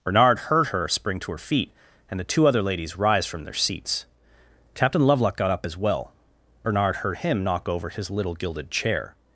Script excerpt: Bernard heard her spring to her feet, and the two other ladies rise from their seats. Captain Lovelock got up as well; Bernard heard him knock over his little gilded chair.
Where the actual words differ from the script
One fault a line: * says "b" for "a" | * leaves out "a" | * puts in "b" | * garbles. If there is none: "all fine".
all fine